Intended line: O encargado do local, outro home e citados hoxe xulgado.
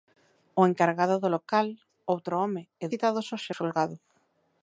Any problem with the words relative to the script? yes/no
no